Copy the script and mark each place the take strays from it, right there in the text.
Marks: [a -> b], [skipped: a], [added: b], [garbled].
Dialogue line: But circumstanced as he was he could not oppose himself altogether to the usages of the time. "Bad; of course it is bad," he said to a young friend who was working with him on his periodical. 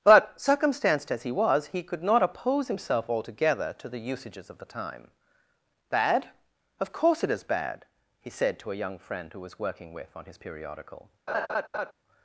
But circumstanced as he was he could not oppose himself altogether to the usages of the time. "Bad; of course it is bad," he said to a young friend who was working with [skipped: him] on his periodical.